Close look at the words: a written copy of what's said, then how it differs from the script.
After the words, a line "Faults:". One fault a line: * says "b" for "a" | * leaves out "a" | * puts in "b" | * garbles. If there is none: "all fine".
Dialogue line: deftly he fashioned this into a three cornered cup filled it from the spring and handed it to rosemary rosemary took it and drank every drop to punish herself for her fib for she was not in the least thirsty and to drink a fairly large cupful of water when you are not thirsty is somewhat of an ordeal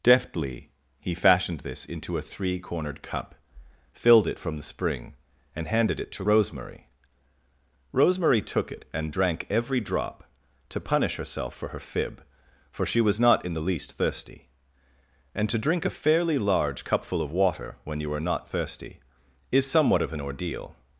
deftly he fashioned this into a three cornered cup filled it from the spring and handed it to rosemary rosemary took it and drank every drop to punish herself for her fib for she was not in the least thirsty and to drink a fairly large cupful of water when you are not thirsty is somewhat of an ordeal
Faults:
all fine